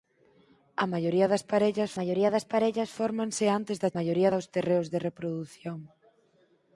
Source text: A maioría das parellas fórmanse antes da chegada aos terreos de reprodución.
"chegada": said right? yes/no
no